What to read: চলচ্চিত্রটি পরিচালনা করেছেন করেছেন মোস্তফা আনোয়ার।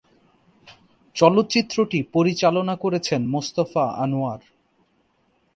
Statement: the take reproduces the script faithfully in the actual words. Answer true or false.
false